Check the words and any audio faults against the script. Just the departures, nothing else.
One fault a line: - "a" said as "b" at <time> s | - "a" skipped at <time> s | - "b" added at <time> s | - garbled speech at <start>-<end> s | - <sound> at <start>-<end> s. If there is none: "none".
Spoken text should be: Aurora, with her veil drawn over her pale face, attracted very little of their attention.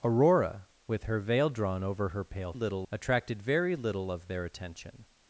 - "face" said as "little" at 2.5 s